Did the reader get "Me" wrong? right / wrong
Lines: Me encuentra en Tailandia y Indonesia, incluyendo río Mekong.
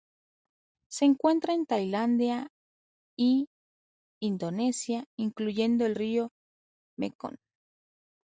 wrong